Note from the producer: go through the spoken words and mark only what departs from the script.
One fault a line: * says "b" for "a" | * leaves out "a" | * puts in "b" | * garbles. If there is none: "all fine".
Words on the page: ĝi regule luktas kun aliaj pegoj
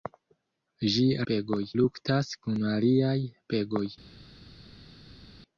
* says "pegoj" for "regule"